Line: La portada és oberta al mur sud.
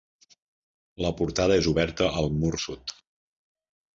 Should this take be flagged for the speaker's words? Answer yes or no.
no